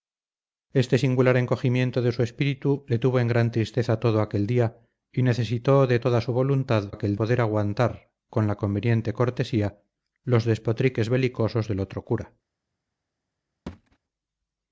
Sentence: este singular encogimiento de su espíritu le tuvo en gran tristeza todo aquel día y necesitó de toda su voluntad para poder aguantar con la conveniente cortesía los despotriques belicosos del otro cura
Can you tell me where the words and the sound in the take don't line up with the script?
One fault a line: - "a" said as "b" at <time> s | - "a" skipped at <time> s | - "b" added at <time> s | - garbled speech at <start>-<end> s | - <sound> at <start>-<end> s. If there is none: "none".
- "para" said as "aquel" at 6.9 s
- thud at 13.7-14.0 s